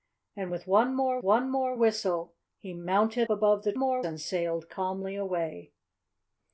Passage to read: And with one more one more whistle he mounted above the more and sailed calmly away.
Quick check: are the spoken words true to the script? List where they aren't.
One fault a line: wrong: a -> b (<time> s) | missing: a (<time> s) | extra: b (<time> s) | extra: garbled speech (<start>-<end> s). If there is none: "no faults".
no faults